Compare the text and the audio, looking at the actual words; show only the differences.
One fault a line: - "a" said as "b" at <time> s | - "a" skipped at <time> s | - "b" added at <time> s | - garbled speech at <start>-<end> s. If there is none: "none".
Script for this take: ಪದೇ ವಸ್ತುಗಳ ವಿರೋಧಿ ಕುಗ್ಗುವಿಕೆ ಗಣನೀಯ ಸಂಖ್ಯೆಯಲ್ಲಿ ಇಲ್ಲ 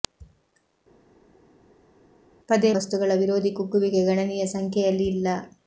none